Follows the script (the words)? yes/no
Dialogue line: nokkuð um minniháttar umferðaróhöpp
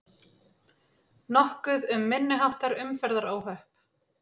yes